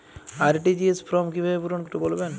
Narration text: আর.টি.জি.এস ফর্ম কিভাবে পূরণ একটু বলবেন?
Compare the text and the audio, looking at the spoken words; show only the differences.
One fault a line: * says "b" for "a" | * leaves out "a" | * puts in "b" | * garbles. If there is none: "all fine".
all fine